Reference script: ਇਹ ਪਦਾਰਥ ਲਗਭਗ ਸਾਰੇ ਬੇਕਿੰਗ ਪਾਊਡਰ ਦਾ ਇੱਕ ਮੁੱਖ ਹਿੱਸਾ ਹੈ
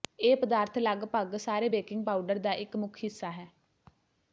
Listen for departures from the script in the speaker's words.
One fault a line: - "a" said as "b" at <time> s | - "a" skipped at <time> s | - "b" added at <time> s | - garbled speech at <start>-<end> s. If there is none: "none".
none